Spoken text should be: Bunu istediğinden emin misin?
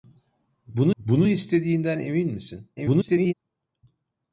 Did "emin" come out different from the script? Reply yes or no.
no